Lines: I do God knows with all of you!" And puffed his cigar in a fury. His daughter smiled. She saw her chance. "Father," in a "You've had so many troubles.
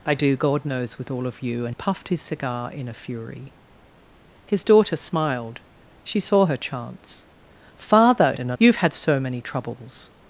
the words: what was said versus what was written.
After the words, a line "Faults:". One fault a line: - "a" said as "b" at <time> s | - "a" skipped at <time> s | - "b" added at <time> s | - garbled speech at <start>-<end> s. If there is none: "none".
I do God knows with all of you!" And puffed his cigar in a fury. His daughter smiled. She saw her chance. "Father," in a "You've had so many troubles.
Faults:
none